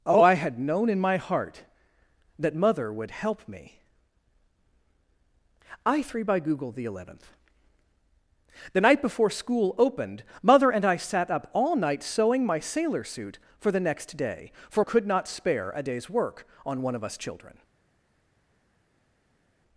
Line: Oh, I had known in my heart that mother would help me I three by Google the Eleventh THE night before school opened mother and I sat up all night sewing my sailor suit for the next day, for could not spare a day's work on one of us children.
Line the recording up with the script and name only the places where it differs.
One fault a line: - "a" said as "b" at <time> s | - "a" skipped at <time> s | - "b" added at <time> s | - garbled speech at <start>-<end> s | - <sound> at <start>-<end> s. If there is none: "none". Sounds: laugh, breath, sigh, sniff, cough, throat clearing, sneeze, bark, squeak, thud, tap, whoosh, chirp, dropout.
none